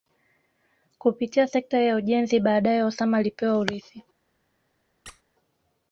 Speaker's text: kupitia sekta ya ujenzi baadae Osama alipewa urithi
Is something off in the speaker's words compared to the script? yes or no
no